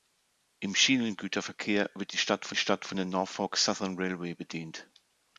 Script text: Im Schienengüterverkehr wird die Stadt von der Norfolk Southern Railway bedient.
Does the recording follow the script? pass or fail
fail